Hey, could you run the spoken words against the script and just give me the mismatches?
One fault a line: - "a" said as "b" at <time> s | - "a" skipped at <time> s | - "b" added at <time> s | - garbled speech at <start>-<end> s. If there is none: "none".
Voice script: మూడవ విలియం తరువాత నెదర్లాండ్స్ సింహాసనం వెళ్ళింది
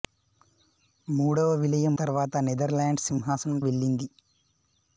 none